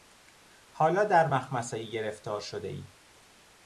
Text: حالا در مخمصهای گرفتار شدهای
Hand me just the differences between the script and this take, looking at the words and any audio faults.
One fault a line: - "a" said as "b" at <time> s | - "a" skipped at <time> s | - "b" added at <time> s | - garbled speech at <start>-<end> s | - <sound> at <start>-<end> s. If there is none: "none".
none